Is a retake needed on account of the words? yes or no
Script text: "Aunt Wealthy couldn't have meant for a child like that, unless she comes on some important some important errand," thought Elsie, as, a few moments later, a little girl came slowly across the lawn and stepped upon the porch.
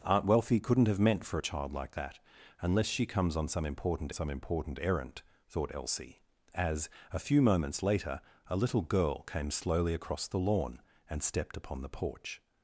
no